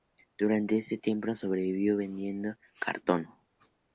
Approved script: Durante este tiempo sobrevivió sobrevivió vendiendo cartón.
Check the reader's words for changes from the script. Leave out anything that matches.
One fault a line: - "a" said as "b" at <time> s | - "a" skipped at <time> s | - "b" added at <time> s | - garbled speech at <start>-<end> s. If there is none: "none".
- "sobrevivió" skipped at 1.9 s